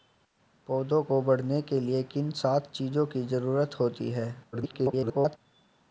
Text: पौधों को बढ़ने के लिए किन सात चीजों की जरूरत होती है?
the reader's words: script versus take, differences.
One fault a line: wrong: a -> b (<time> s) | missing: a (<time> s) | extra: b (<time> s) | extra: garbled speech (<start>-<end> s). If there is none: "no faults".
extra: garbled speech (4.5-5.4 s)